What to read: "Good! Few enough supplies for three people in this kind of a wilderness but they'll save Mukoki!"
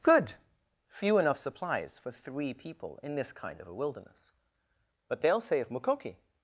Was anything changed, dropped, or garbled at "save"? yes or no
yes